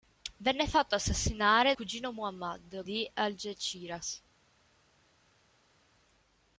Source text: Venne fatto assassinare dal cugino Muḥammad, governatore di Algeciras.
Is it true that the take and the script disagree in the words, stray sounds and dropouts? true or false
true